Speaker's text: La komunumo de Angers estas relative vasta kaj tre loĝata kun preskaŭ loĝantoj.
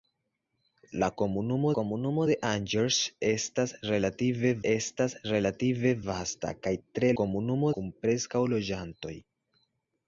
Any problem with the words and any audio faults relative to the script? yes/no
yes